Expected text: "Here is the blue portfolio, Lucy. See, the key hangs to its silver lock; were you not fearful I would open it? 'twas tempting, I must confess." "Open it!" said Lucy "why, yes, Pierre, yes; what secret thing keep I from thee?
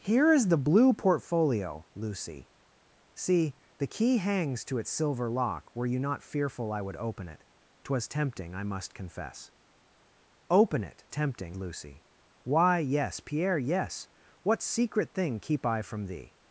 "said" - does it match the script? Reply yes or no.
no